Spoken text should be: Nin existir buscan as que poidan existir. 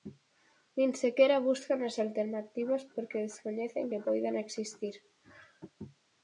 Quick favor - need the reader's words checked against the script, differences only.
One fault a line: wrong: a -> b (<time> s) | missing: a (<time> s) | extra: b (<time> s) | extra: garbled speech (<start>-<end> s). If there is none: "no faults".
wrong: existir -> sequera (1.0 s)
extra: alternativas porque descoñecen (2.0 s)